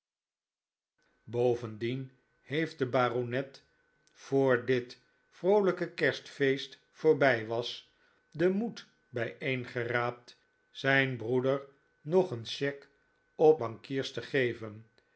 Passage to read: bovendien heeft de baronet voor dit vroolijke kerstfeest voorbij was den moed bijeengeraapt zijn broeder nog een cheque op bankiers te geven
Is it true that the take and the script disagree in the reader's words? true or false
false